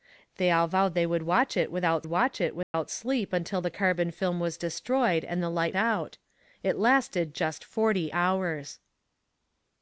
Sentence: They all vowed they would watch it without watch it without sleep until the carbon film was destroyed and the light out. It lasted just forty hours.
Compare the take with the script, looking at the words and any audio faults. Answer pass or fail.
fail